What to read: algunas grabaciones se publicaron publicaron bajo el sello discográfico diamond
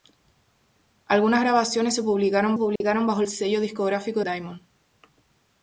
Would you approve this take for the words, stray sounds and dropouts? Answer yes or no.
no